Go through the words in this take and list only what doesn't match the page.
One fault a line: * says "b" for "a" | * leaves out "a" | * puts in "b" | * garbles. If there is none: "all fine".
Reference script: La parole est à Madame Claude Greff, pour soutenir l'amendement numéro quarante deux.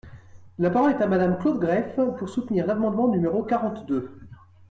all fine